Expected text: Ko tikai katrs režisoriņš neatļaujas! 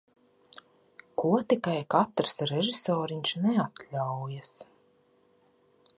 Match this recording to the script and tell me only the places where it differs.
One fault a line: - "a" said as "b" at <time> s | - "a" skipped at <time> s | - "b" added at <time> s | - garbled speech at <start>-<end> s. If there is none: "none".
none